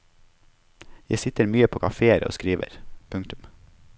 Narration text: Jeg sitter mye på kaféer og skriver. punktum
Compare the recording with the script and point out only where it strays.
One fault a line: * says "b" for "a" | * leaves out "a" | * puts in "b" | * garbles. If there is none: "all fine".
all fine